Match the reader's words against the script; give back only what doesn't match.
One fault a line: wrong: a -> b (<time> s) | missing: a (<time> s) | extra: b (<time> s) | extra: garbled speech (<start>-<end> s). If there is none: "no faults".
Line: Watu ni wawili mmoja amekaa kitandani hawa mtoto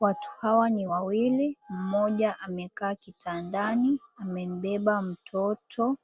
extra: hawa (0.4 s)
wrong: hawa -> amembeba (4.2 s)